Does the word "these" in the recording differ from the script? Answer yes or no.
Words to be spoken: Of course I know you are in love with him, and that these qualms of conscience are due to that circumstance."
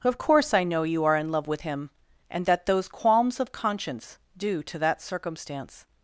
yes